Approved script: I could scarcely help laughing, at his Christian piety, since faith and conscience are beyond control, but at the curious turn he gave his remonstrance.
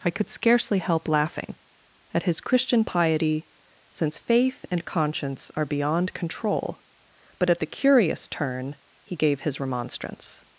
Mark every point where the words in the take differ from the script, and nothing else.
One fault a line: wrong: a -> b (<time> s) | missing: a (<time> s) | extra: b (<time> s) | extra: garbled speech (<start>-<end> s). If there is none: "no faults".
no faults